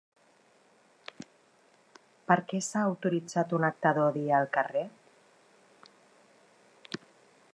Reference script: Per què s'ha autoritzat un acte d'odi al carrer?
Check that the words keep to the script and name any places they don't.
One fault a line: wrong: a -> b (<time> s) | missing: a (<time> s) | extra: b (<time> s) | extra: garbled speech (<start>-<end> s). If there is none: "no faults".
no faults